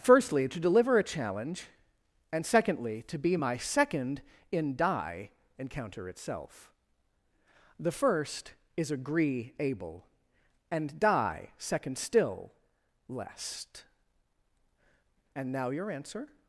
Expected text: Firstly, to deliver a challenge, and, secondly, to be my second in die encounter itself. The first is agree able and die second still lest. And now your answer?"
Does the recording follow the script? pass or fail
pass